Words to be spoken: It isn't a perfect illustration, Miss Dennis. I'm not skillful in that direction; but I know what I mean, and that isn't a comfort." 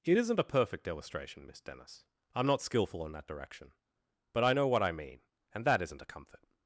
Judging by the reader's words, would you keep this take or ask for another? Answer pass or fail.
pass